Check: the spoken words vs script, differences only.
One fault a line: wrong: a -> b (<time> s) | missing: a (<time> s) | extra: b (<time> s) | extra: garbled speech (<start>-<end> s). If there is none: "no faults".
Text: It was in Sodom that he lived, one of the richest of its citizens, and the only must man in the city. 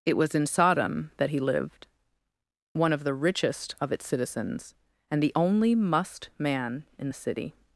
no faults